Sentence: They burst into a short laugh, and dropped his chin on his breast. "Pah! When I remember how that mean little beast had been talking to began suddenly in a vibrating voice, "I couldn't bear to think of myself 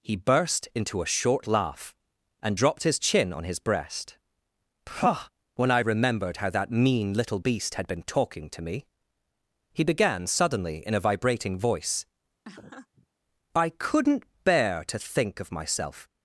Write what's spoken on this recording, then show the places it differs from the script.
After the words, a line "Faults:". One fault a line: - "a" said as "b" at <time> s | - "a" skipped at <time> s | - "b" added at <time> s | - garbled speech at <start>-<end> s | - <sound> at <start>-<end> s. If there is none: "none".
He burst into a short laugh, and dropped his chin on his breast. "Pah! When I remembered how that mean little beast had been talking to me," he began suddenly in a vibrating voice, "I couldn't bear to think of myself
Faults:
- "They" said as "He" at 0.0 s
- "remember" said as "remembered" at 5.8 s
- "me he" added at 8.6 s
- laugh at 12.4-13.1 s